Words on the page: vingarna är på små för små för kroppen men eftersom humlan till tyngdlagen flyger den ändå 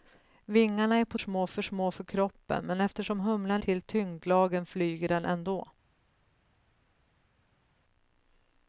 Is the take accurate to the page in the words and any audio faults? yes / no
yes